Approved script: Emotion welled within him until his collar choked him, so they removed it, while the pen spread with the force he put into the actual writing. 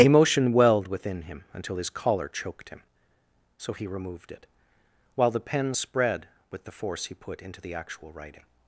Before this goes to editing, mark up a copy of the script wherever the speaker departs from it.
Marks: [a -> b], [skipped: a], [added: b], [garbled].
Emotion welled within him until his collar choked him, so [they -> he] removed it, while the pen spread with the force he put into the actual writing.